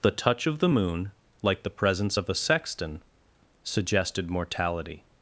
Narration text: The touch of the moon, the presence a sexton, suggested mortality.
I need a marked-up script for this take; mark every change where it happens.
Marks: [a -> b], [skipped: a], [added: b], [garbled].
The touch of the moon, [added: like] the presence [added: of] a sexton, suggested mortality.